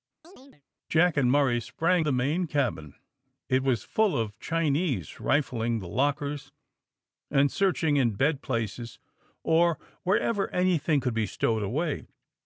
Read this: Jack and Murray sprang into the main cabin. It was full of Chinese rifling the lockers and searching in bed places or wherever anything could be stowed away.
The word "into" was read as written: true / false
false